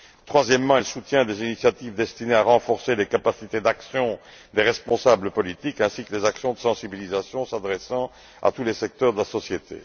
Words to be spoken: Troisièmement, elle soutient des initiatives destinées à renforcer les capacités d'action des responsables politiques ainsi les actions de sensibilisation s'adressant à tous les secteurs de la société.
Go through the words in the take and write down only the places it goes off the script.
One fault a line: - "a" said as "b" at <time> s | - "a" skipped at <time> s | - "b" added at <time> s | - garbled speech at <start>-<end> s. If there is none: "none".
- "que" added at 6.0 s